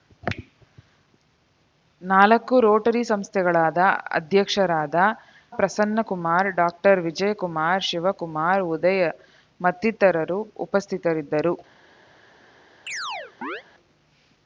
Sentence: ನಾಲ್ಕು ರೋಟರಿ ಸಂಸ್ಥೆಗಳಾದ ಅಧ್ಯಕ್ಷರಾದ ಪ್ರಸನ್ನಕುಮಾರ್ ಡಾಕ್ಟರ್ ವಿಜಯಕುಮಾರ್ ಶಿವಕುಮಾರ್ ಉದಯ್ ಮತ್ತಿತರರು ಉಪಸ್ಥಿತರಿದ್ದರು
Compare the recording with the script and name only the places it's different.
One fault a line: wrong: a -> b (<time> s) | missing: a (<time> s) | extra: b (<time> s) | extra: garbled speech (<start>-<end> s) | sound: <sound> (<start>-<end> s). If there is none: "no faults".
sound: chirp (12.9-13.6 s)